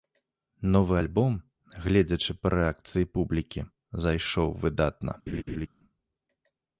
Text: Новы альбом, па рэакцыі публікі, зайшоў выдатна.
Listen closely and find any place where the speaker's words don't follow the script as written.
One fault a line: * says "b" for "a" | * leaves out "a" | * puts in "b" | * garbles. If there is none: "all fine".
* puts in "гледзячы"